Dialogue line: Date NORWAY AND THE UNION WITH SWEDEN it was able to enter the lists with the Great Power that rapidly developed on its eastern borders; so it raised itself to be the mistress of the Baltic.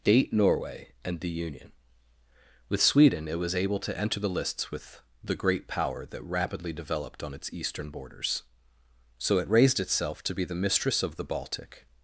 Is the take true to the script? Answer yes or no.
yes